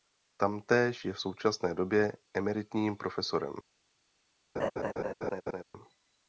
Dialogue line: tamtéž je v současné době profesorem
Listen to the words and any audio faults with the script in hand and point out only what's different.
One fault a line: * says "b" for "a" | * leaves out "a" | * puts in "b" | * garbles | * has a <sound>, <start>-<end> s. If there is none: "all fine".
* puts in "emeritním"
* has a laugh, 4.6-5.6 s